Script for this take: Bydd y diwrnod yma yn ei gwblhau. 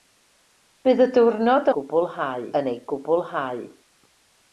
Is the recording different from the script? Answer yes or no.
yes